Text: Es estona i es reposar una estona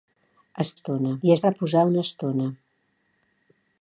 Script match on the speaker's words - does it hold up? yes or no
yes